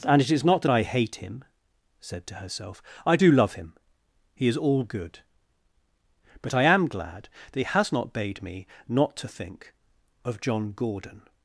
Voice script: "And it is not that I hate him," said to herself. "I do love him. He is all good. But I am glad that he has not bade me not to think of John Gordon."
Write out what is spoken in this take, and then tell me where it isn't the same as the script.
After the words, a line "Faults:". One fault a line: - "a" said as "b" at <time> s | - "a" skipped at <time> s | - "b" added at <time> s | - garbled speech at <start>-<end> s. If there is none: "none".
"And it is not that I hate him," said to herself. "I do love him. He is all good. But I am glad that he has not bade me not to think of John Gordon."
Faults:
none